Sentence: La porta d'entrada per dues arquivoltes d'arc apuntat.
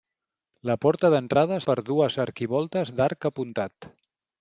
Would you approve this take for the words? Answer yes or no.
yes